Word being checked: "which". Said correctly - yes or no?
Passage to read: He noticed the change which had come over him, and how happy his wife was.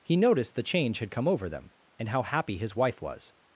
no